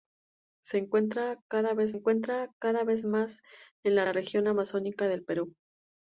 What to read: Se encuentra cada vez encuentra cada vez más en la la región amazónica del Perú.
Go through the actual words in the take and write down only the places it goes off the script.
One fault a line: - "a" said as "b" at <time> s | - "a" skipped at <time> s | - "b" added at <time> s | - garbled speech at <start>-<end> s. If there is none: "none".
none